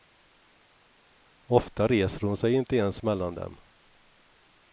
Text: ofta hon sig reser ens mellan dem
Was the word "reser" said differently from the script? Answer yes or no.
yes